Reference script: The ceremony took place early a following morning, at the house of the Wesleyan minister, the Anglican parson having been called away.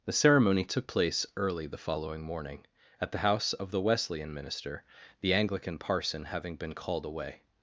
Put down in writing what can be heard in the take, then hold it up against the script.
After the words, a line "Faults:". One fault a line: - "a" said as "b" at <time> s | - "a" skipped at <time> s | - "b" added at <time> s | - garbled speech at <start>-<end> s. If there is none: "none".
The ceremony took place early the following morning, at the house of the Wesleyan minister, the Anglican parson having been called away.
Faults:
- "a" said as "the" at 1.7 s